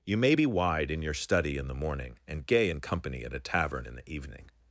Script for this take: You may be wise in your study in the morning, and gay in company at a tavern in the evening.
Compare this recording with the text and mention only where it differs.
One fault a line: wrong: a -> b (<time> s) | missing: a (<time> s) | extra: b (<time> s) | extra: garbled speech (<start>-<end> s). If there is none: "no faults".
wrong: wise -> wide (0.5 s)